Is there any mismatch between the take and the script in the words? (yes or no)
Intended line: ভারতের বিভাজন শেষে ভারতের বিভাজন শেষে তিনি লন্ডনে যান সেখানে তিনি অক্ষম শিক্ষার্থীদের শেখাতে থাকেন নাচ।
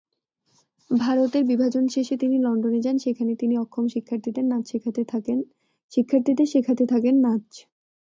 yes